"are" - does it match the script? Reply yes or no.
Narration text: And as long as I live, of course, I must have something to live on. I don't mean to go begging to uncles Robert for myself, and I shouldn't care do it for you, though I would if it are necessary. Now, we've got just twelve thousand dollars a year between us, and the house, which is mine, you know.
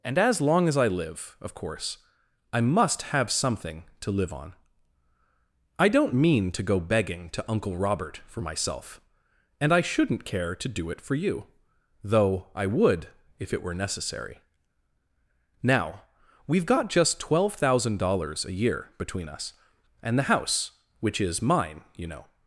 no